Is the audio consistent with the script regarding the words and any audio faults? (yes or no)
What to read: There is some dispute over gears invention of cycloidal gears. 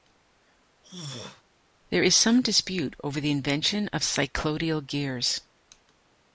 no